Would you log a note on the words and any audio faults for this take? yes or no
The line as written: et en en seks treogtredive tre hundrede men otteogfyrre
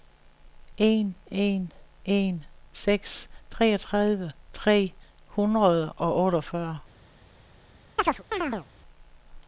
yes